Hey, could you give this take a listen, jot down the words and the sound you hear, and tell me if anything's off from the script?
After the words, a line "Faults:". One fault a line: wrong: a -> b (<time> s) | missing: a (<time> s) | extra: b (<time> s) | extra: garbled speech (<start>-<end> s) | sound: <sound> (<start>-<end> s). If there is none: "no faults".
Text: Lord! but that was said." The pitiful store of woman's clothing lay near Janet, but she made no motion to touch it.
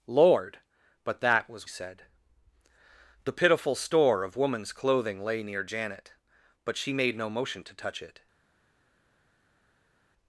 Lord! but that was said." The pitiful store of woman's clothing lay near Janet, but she made no motion to touch it.
Faults:
no faults